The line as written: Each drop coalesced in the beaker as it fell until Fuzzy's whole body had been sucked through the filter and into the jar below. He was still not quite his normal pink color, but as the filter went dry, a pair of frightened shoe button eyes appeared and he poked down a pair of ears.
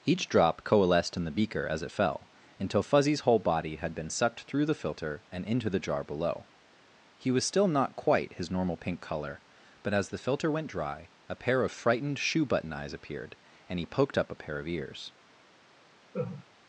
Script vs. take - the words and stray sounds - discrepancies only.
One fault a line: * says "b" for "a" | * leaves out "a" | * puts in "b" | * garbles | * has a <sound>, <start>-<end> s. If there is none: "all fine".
* says "up" for "down"
* has a laugh, 16.1-16.5 s